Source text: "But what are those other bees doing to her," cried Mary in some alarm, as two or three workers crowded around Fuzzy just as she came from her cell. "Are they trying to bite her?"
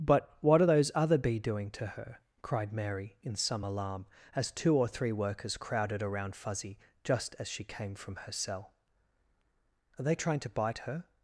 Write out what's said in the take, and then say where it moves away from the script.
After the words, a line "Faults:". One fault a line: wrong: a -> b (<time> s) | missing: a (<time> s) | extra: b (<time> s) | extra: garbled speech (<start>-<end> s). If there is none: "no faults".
"But what are those other bee doing to her," cried Mary in some alarm, as two or three workers crowded around Fuzzy just as she came from her cell. "Are they trying to bite her?"
Faults:
wrong: bees -> bee (1.2 s)